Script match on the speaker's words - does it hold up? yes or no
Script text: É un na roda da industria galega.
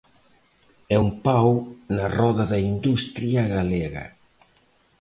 no